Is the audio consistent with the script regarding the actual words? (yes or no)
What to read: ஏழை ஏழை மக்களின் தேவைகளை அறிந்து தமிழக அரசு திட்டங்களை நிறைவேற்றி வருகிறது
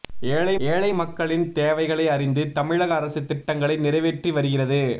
yes